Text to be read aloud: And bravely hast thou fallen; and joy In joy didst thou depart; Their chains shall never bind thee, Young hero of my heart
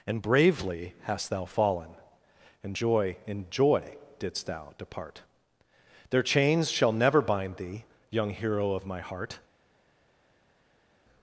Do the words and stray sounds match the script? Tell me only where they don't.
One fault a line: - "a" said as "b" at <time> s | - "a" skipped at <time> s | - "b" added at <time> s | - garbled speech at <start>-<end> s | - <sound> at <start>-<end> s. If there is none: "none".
none